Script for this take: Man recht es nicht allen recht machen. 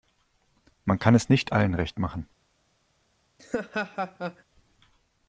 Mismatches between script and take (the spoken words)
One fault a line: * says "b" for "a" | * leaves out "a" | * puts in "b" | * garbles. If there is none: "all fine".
* says "kann" for "recht"